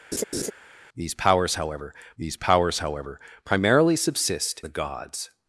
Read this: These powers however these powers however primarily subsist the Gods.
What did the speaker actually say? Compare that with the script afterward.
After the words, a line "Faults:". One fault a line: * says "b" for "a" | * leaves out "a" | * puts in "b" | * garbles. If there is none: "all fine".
These powers however these powers however primarily subsist the Gods.
Faults:
all fine